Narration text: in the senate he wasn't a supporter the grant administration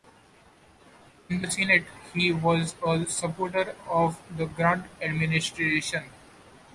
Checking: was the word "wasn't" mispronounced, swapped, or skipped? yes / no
yes